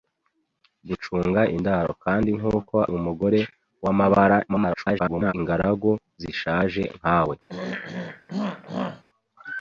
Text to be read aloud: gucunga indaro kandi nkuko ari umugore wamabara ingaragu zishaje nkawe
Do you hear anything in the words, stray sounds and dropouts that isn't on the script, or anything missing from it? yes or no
yes